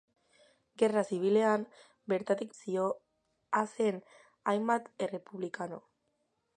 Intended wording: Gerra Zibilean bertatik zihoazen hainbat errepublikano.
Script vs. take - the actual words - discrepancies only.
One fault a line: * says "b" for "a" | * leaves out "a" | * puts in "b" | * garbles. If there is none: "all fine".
all fine